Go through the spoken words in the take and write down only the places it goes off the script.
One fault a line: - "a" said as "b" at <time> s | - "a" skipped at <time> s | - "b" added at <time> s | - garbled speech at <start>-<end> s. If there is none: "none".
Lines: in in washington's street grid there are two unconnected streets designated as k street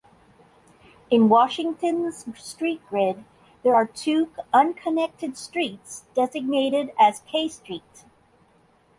- "in" skipped at 1.3 s